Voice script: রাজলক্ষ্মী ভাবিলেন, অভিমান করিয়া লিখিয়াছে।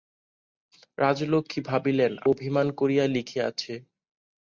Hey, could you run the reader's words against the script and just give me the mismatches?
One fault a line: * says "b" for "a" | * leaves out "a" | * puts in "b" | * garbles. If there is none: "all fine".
all fine